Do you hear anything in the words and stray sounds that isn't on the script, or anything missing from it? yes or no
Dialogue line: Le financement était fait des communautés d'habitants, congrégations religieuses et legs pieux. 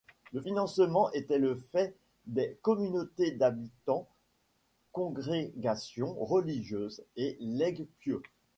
yes